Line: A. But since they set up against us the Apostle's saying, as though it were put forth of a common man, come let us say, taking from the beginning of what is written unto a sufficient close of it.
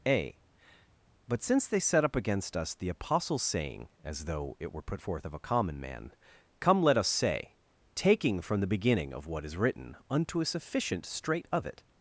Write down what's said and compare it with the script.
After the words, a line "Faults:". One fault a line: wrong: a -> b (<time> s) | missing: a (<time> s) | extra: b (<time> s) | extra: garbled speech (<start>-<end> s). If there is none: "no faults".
A. But since they set up against us the Apostle's saying, as though it were put forth of a common man, come let us say, taking from the beginning of what is written unto a sufficient straight of it.
Faults:
wrong: close -> straight (11.0 s)